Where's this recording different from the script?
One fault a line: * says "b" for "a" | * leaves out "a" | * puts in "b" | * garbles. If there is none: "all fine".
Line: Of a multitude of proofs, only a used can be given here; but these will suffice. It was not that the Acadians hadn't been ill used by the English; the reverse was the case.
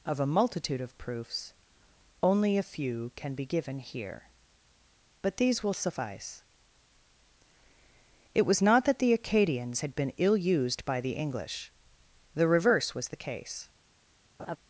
* says "few" for "used"
* says "had" for "hadn't"